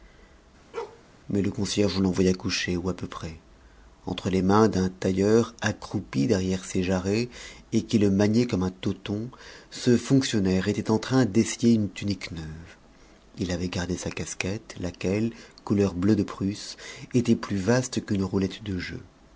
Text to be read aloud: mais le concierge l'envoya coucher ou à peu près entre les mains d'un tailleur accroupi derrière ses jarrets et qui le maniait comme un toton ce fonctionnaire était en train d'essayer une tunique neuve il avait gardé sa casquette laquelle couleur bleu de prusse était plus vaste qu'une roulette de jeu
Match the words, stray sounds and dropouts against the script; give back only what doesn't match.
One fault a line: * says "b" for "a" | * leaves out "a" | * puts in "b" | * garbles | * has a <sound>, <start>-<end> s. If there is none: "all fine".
* has a bark, 0.7-1.0 s